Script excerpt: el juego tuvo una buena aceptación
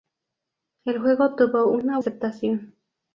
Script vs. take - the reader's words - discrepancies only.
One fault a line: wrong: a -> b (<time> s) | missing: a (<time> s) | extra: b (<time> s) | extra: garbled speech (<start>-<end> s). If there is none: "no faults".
missing: buena (2.0 s)